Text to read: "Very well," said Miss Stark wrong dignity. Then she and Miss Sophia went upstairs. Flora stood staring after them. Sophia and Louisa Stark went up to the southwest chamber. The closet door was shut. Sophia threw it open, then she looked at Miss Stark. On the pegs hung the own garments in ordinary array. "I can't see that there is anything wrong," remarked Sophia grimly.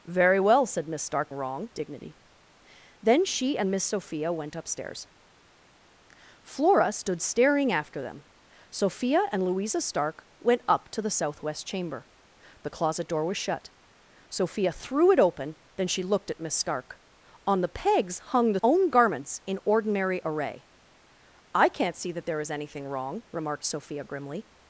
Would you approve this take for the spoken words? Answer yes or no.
yes